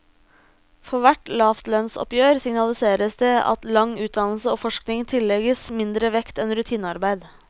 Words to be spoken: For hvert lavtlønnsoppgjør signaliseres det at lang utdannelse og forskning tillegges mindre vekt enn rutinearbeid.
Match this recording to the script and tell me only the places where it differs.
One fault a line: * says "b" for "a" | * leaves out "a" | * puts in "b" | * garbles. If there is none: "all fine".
all fine